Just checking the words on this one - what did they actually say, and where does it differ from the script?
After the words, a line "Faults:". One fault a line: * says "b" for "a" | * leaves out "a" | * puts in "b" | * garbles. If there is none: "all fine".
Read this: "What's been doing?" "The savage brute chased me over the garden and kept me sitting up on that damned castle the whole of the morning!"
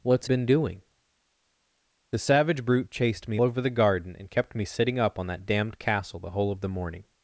"What's been doing?" "The savage brute chased me over the garden and kept me sitting up on that damned castle the whole of the morning!"
Faults:
all fine